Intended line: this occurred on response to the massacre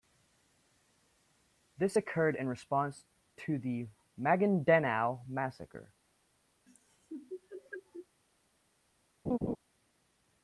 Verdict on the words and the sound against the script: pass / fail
fail